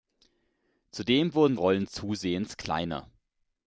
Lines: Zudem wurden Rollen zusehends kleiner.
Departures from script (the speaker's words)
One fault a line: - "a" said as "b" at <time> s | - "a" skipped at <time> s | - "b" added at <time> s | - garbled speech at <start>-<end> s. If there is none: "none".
none